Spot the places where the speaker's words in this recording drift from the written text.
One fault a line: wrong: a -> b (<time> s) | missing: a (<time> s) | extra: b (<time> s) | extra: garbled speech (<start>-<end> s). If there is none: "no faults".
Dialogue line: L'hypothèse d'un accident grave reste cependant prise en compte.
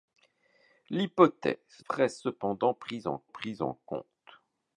wrong: d'un accident grave reste cependant -> reste cependant prise en (1.9 s)